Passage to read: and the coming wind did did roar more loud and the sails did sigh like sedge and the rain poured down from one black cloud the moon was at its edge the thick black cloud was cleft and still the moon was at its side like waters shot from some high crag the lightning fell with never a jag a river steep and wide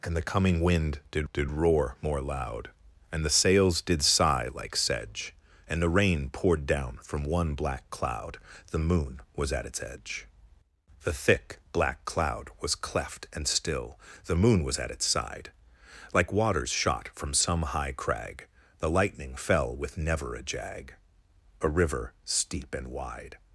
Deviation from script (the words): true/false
false